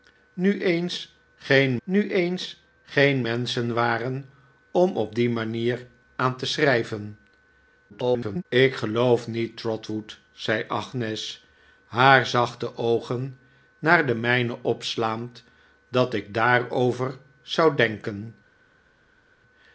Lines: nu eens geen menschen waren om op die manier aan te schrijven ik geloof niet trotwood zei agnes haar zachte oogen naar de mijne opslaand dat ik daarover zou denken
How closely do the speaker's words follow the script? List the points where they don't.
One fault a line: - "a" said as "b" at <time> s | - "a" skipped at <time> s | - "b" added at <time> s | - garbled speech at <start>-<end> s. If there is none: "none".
- "nu eens geen" added at 1.8 s
- garbled speech at 7.9-8.5 s